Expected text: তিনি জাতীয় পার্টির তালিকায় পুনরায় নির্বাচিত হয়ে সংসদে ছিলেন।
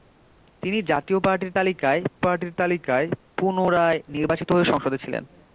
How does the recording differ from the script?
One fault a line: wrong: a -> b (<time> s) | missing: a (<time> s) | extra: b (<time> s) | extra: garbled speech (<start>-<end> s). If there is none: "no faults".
extra: পার্টির তালিকায় (2.2 s)